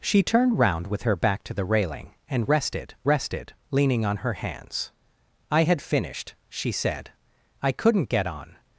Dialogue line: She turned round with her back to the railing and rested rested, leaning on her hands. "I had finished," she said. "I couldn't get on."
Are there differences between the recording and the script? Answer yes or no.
no